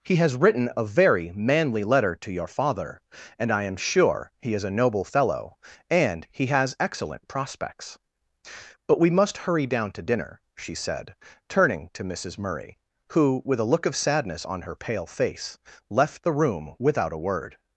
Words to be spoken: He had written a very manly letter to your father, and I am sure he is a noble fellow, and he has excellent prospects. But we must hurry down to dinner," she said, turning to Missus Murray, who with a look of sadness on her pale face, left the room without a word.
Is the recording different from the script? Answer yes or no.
yes